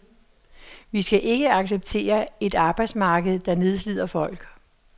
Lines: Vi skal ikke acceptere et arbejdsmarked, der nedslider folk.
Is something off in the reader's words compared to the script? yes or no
no